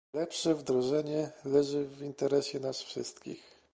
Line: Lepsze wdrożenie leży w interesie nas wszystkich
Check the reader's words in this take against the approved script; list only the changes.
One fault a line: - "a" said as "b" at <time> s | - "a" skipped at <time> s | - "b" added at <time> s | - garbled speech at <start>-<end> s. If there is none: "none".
none